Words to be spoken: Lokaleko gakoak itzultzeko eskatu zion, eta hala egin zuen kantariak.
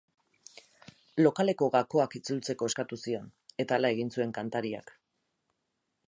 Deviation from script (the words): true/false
false